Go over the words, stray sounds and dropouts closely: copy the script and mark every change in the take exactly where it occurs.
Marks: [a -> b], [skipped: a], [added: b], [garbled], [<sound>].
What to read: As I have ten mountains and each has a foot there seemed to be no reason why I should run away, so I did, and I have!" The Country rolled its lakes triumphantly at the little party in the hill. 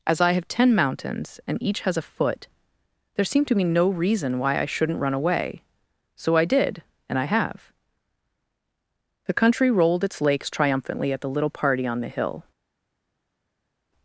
As I have ten mountains and each has a foot there seemed to be no reason why I [should -> shouldn't] run away, so I did, and I have!" The Country rolled its lakes triumphantly at the little party [in -> on] the hill.